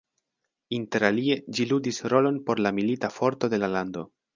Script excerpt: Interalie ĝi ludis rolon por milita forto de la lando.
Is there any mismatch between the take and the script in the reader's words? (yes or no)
yes